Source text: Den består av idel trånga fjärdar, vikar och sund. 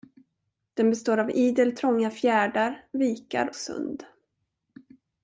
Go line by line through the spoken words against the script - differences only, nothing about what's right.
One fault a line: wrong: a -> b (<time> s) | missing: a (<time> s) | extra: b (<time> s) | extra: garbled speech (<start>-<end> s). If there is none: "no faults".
missing: och (3.6 s)